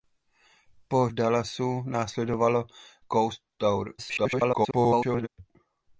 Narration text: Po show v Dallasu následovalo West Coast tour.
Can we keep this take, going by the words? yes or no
no